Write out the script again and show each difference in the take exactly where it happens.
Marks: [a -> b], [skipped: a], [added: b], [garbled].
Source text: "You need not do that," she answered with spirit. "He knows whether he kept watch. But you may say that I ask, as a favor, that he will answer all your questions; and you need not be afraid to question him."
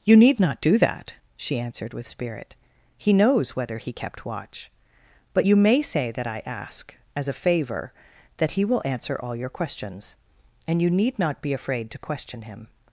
"You need not do that," she answered with spirit. "He knows whether he kept watch. But you may say that I ask, as a favor, that he will answer all your questions; and you need not be afraid to question him."